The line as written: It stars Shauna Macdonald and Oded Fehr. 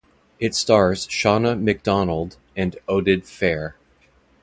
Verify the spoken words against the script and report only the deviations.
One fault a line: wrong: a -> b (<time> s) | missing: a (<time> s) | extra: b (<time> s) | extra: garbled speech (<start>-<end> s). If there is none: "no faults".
no faults